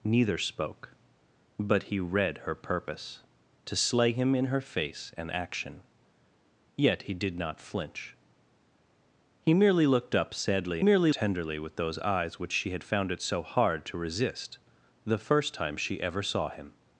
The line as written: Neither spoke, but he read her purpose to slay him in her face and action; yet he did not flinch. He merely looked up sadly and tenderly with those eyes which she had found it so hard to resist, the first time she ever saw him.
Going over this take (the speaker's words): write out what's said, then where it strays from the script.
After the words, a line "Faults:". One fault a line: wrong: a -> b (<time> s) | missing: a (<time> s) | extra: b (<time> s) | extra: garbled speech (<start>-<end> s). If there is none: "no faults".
Neither spoke, but he read her purpose to slay him in her face and action; yet he did not flinch. He merely looked up sadly merely tenderly with those eyes which she had found it so hard to resist, the first time she ever saw him.
Faults:
wrong: and -> merely (10.8 s)